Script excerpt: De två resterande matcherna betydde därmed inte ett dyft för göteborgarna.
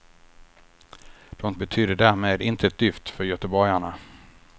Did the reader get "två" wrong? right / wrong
wrong